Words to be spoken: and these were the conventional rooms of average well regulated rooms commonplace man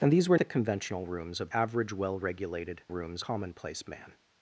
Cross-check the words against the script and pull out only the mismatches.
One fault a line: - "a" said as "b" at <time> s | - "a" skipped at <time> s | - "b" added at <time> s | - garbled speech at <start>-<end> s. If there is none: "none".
none